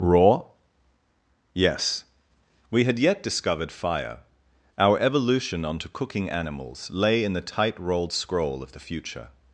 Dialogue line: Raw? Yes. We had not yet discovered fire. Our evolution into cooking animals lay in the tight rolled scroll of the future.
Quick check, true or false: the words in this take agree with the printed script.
false